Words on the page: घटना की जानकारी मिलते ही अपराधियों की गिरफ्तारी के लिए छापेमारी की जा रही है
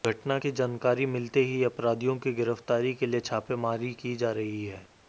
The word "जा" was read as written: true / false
true